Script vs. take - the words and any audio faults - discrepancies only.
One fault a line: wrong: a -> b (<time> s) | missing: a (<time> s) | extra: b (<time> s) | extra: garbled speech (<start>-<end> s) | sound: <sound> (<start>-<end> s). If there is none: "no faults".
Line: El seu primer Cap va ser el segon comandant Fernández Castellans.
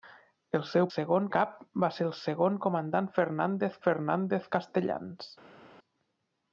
wrong: primer -> segon (0.9 s)
extra: Fernández (3.9 s)